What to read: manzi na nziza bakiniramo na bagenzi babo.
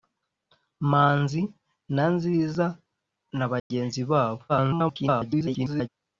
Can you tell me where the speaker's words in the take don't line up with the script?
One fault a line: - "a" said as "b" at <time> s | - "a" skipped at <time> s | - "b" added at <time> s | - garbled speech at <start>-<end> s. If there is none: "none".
- "bakiniramo" skipped at 2.6 s
- garbled speech at 4.5-5.9 s